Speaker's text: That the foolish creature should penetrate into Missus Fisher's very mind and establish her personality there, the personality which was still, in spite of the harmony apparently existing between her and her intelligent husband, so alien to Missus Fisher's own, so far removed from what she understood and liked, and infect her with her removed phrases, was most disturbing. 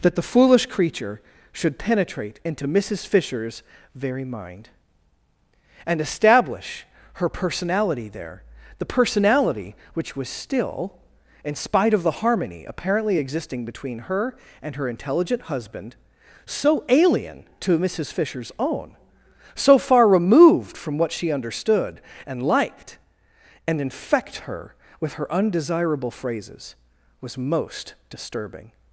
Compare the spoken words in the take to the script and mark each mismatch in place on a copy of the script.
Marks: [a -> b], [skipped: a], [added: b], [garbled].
That the foolish creature should penetrate into Missus Fisher's very mind and establish her personality there, the personality which was still, in spite of the harmony apparently existing between her and her intelligent husband, so alien to Missus Fisher's own, so far removed from what she understood and liked, and infect her with her [removed -> undesirable] phrases, was most disturbing.